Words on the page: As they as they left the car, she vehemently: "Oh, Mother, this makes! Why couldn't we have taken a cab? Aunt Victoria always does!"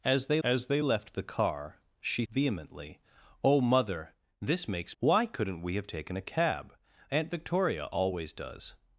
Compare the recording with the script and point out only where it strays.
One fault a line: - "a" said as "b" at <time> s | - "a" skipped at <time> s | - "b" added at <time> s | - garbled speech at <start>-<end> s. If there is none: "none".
none